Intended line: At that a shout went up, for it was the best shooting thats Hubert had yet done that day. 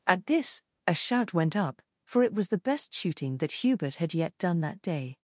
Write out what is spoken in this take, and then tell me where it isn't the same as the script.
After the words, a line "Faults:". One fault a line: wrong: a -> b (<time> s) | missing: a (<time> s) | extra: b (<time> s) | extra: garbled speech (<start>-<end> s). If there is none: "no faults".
At this a shout went up, for it was the best shooting that Hubert had yet done that day.
Faults:
wrong: that -> this (0.2 s)
wrong: thats -> that (3.4 s)